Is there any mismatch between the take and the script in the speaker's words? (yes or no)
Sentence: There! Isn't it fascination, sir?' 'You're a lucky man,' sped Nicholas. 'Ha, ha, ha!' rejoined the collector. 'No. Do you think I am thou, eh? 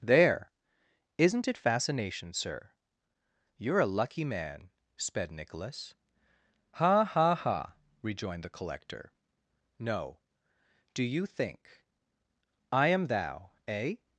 no